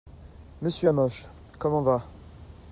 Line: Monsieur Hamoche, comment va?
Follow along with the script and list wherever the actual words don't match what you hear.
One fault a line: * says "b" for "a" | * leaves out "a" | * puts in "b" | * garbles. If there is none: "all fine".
all fine